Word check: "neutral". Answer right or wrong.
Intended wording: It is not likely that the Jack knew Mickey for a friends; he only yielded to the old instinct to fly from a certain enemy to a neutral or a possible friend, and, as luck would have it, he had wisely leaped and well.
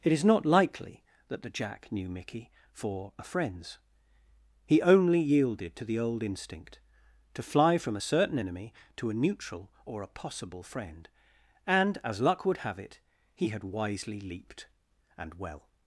right